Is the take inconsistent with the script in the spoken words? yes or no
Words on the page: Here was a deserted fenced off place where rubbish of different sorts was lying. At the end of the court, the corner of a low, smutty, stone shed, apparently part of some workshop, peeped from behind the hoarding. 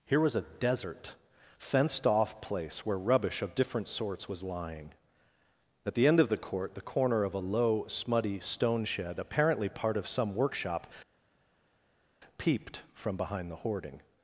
yes